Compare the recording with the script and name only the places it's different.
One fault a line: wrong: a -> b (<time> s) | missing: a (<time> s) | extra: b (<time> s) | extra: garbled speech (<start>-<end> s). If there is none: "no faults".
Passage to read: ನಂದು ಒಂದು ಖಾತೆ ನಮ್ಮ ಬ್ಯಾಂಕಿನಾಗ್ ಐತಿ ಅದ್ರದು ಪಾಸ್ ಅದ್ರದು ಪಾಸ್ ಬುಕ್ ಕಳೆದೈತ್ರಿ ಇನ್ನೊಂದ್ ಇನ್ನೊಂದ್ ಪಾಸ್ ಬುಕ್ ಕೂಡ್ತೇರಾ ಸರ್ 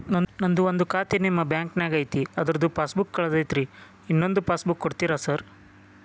wrong: ನಮ್ಮ -> ನಿಮ್ಮ (1.2 s)
missing: ಅದ್ರದು ಪಾಸ್ (3.0 s)
missing: ಇನ್ನೊಂದ್ (4.4 s)